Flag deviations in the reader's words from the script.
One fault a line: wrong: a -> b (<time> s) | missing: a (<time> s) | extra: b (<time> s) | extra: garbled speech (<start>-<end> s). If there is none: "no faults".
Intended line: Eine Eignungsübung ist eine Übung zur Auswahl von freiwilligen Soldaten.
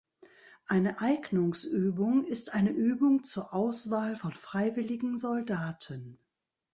no faults